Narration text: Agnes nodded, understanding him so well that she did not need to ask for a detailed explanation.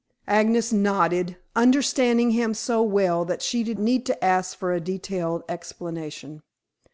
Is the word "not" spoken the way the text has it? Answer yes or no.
no